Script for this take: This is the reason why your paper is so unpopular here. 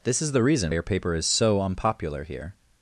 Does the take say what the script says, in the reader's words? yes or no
no